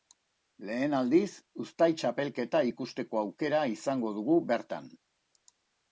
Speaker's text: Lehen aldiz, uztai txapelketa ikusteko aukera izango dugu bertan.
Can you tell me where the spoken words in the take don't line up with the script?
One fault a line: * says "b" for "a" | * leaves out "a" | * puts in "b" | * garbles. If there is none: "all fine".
all fine